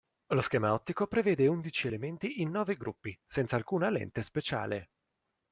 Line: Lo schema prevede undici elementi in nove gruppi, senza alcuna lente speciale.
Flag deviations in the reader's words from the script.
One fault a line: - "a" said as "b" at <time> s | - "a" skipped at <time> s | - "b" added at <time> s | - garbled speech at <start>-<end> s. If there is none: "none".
- "ottico" added at 0.7 s